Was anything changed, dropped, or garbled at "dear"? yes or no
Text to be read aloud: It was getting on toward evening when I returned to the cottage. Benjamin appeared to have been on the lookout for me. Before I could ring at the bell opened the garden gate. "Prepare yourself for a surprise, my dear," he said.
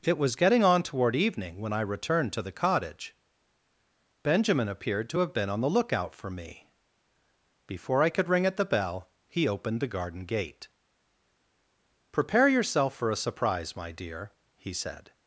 no